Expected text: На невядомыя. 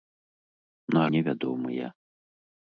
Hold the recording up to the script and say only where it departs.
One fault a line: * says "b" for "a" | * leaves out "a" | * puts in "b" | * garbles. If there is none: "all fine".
all fine